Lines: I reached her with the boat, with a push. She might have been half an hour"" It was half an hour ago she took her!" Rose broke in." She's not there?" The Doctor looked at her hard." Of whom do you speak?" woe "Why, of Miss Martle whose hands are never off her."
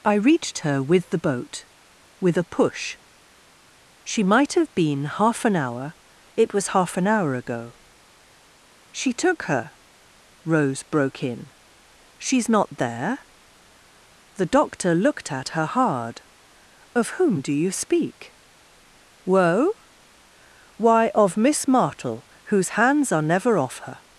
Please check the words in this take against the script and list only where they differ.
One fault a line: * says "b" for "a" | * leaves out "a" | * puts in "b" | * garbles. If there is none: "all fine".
all fine